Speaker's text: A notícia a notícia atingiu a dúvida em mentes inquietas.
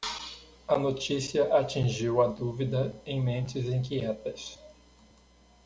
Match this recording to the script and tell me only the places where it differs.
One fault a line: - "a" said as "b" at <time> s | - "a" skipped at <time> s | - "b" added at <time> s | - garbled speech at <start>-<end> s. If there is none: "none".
- "a notícia" skipped at 1.5 s